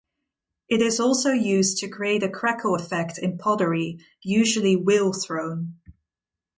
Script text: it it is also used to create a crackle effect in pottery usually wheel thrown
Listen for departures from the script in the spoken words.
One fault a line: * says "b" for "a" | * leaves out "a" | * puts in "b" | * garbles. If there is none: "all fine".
* leaves out "it"